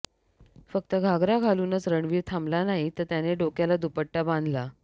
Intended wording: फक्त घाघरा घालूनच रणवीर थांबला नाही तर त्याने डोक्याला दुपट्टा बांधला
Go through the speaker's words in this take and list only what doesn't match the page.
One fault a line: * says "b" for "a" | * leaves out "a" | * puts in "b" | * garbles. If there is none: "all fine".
all fine